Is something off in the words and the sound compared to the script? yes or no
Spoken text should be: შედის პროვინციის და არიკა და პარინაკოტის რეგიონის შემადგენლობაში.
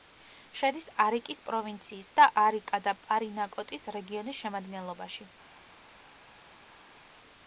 yes